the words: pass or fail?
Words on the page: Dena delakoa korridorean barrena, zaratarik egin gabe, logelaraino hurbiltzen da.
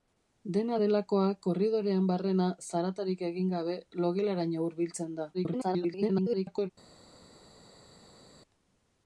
fail